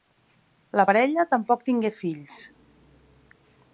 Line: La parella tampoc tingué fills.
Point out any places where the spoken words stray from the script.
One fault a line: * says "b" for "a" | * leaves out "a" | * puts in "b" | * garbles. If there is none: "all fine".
all fine